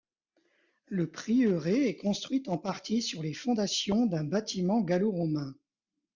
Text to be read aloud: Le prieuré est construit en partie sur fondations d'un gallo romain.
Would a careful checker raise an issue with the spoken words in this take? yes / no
yes